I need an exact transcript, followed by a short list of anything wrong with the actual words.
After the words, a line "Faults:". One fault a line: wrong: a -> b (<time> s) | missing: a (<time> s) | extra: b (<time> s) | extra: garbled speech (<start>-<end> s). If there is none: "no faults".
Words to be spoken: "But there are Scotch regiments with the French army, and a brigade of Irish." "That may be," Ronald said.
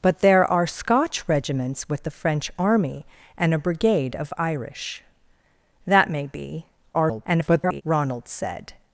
"But there are Scotch regiments with the French army, and a brigade of Irish." "That may be," [garbled] Ronald said.
Faults:
extra: garbled speech (6.9-7.8 s)